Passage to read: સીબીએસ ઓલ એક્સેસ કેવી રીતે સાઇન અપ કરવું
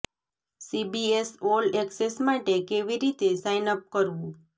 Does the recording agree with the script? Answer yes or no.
no